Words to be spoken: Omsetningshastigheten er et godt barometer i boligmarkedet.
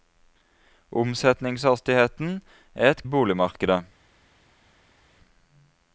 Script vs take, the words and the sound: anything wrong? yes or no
yes